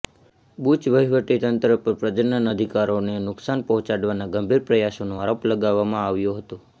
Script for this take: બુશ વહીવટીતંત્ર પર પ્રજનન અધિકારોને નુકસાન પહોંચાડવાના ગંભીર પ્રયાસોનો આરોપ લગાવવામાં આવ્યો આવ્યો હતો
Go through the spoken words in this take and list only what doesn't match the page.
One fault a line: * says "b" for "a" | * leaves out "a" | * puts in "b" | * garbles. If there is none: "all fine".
* leaves out "આવ્યો"